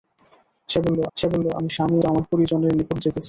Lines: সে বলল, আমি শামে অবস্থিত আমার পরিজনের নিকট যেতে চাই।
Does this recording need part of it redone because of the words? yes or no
yes